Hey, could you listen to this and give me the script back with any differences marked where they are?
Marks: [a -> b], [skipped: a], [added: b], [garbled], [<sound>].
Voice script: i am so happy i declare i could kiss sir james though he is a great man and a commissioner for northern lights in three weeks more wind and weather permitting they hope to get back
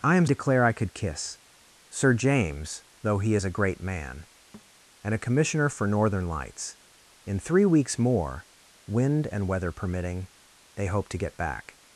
i am [skipped: so happy i] declare i could kiss sir james though he is a great man [thud] and a commissioner for northern lights in three weeks more wind and weather permitting they hope to get back